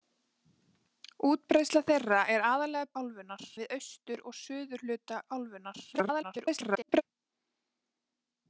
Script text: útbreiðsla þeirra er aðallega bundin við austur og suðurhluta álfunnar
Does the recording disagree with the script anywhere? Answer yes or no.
yes